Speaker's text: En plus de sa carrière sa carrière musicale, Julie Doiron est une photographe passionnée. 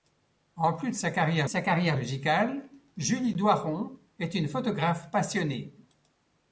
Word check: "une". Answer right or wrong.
right